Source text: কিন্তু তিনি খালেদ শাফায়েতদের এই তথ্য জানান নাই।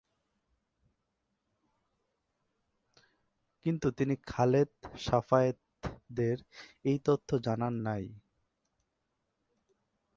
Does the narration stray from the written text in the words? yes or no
no